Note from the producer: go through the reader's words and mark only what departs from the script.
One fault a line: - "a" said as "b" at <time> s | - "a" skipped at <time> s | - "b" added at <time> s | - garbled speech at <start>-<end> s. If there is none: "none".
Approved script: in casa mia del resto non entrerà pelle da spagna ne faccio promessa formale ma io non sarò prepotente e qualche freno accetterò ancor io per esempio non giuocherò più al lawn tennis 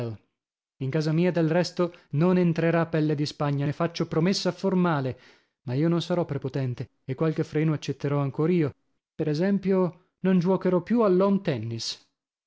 - "da" said as "di" at 3.1 s